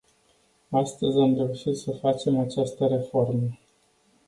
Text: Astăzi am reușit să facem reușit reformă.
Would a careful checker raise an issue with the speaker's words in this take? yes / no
yes